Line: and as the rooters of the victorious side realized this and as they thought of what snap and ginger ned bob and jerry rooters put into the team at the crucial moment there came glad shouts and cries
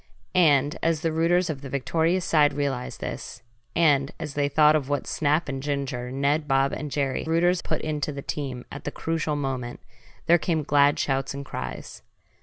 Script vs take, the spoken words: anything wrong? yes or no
no